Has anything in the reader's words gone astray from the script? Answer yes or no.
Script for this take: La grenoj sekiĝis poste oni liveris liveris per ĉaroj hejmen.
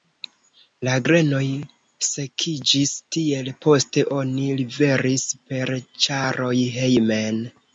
yes